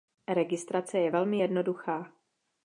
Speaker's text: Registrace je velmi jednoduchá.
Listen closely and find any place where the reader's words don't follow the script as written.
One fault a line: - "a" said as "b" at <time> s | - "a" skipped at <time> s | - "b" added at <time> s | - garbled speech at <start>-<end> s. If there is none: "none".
none